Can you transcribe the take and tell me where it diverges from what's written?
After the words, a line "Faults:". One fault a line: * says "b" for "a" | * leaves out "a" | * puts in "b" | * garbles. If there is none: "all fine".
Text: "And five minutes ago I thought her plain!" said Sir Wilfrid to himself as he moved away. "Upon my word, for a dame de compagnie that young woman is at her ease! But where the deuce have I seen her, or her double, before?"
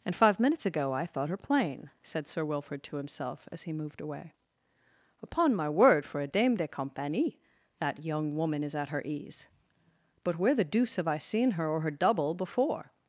"And five minutes ago I thought her plain!" said Sir Wilfrid to himself as he moved away. "Upon my word, for a dame de compagnie that young woman is at her ease! But where the deuce have I seen her, or her double, before?"
Faults:
all fine